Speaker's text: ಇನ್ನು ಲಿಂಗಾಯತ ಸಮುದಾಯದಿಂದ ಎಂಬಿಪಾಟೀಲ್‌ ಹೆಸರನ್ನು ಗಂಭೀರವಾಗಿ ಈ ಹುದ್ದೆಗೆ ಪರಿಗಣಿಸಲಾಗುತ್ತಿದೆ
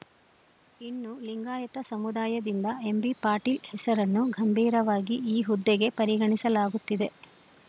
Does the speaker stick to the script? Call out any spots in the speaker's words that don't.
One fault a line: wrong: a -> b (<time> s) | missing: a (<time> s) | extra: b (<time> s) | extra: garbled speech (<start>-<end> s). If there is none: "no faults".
no faults